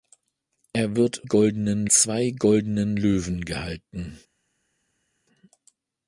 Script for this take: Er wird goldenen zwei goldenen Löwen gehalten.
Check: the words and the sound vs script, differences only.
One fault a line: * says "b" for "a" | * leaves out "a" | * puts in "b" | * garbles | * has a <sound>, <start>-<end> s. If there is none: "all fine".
all fine